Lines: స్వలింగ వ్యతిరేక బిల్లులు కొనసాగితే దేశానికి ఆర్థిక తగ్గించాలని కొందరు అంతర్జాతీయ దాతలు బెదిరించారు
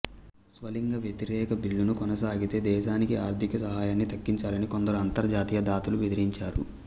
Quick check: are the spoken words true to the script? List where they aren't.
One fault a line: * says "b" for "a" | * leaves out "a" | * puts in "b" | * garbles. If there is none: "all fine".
* puts in "సహాయాన్ని"